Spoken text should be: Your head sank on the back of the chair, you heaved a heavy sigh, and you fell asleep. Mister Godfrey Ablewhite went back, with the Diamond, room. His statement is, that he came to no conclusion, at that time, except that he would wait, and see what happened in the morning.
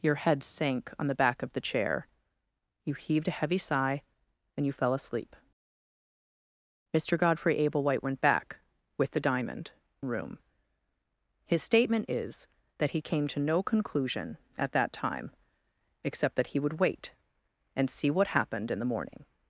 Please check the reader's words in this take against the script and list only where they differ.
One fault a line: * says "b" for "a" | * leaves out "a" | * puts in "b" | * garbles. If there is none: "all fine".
all fine